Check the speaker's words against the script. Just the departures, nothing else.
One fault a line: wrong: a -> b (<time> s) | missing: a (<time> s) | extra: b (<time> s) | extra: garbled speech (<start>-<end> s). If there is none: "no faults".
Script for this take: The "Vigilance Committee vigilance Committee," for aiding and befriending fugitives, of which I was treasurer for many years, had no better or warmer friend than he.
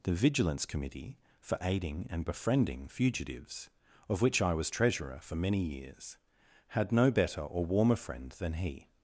missing: vigilance Committee (1.2 s)